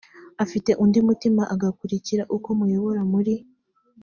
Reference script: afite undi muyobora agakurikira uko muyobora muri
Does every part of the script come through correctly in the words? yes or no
no